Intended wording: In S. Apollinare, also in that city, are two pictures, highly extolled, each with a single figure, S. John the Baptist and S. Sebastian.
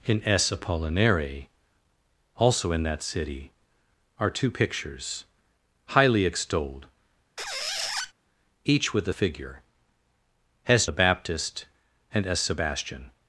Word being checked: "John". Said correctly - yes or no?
no